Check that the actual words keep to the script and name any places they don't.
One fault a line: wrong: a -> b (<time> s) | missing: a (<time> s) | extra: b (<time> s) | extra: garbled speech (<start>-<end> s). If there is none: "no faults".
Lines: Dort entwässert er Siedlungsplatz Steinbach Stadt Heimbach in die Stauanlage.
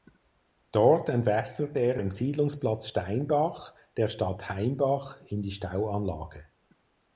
extra: im (2.0 s)
extra: der (3.9 s)